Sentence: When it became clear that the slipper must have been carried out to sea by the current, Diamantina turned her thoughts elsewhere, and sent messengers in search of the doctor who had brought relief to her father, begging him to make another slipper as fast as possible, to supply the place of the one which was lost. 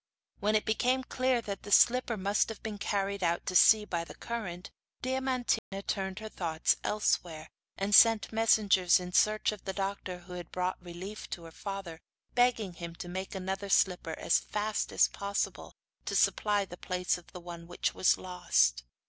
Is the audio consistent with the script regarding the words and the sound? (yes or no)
no